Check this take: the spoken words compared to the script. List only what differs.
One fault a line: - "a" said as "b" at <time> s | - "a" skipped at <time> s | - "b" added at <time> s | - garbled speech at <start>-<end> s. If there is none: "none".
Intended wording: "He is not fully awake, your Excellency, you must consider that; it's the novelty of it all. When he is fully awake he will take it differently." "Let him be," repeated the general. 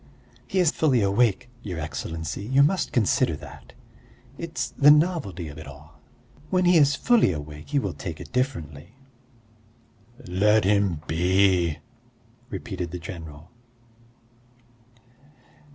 - "not" skipped at 0.7 s